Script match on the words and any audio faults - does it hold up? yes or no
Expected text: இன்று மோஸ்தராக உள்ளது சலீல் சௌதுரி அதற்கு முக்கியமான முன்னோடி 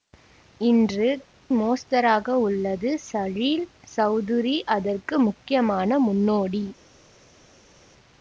yes